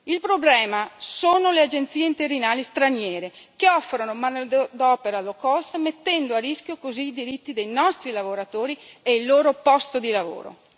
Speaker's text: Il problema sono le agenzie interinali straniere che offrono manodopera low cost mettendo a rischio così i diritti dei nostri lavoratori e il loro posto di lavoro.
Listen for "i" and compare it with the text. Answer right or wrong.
right